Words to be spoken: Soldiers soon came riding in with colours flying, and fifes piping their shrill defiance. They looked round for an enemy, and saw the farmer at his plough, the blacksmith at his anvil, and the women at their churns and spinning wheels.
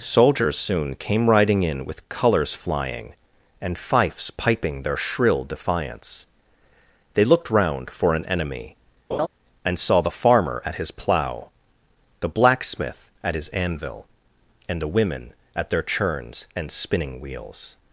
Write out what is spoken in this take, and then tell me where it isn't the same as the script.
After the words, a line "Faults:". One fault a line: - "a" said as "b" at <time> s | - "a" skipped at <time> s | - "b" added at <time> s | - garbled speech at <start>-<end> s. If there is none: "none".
Soldiers soon came riding in with colours flying, and fifes piping their shrill defiance. They looked round for an enemy, and saw the farmer at his plough, the blacksmith at his anvil, and the women at their churns and spinning wheels.
Faults:
none